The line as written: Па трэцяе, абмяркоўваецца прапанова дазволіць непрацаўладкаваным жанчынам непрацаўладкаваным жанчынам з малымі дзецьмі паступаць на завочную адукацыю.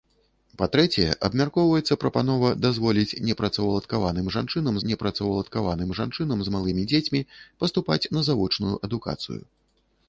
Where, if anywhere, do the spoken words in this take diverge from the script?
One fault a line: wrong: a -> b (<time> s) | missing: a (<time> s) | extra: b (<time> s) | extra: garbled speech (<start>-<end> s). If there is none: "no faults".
no faults